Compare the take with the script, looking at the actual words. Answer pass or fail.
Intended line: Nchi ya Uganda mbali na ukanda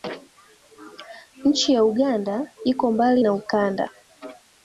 fail